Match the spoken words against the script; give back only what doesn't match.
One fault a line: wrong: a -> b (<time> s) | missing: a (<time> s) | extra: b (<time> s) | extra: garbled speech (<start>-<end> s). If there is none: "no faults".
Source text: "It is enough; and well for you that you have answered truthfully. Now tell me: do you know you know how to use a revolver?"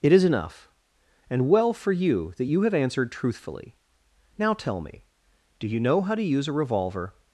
missing: you know (6.0 s)